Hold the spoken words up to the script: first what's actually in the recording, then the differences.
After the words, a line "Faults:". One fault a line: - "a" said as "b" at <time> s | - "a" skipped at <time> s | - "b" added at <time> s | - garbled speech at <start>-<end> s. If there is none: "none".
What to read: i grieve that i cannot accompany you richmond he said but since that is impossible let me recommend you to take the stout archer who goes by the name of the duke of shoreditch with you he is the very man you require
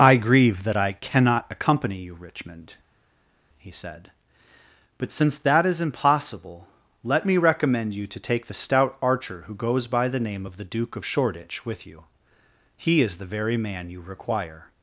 i grieve that i cannot accompany you richmond he said but since that is impossible let me recommend you to take the stout archer who goes by the name of the duke of shoreditch with you he is the very man you require
Faults:
none